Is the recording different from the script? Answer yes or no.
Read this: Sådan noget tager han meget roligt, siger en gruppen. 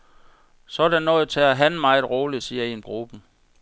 no